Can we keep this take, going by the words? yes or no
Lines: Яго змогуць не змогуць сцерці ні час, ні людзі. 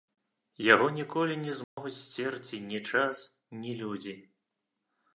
no